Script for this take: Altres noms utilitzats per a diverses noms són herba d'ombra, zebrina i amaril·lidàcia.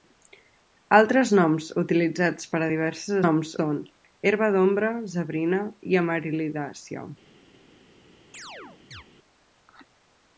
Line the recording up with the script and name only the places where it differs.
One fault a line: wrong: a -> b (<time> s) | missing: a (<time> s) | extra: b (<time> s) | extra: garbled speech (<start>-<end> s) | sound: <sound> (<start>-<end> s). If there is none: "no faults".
sound: chirp (8.3-9.0 s)